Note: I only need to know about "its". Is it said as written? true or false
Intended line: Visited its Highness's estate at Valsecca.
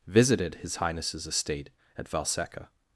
false